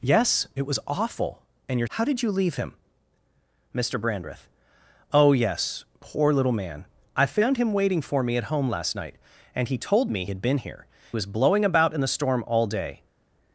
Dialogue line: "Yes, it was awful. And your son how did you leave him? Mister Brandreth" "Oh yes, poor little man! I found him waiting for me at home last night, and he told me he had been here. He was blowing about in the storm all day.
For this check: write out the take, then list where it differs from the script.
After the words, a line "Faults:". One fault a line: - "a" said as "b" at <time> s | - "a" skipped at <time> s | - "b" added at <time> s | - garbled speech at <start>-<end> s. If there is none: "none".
"Yes, it was awful. And your how did you leave him? Mister Brandreth" "Oh yes, poor little man! I found him waiting for me at home last night, and he told me had been here. Was blowing about in the storm all day.
Faults:
- "son" skipped at 1.9 s
- "he" skipped at 10.3 s
- "He" skipped at 10.9 s